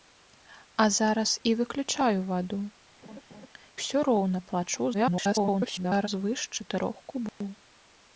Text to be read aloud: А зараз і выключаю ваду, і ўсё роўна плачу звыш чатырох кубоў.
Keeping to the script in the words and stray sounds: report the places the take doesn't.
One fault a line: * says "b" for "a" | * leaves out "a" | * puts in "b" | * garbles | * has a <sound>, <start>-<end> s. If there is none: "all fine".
* leaves out "і"
* has a laugh, 3.0-3.5 s
* garbles
* has a dropout, 7.3-7.4 s